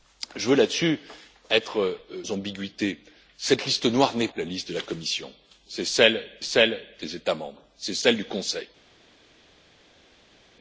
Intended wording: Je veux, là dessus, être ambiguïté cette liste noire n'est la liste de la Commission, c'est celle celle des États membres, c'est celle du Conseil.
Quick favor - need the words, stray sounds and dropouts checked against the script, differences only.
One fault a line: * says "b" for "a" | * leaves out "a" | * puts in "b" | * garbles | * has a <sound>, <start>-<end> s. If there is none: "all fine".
all fine